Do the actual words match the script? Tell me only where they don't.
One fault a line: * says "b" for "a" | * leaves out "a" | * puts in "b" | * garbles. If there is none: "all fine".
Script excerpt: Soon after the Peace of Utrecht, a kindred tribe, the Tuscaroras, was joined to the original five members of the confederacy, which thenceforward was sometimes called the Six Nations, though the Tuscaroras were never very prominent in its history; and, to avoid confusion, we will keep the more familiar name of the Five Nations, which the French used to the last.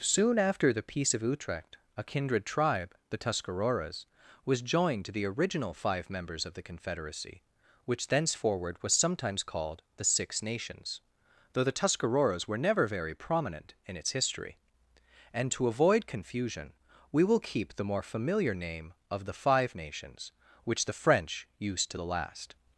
all fine